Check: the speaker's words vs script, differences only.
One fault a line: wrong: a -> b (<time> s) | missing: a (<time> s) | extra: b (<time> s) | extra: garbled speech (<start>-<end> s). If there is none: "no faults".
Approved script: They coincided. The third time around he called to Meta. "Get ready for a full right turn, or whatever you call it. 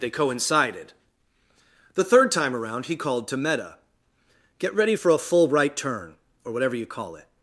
no faults